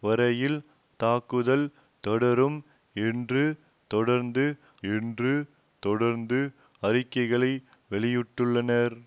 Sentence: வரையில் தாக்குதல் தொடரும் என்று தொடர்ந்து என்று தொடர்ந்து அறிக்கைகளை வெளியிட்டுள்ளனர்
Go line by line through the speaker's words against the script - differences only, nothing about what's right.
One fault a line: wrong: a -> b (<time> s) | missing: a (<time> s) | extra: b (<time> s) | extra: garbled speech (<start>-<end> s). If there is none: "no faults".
no faults